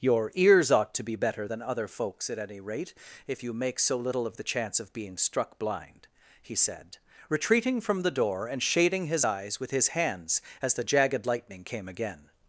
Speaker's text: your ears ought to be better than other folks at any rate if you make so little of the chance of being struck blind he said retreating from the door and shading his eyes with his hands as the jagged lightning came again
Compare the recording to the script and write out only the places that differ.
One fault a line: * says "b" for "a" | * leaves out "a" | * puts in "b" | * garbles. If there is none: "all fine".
all fine